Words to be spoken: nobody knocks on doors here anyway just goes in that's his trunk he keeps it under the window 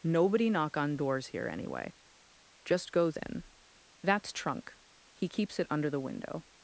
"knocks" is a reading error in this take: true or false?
true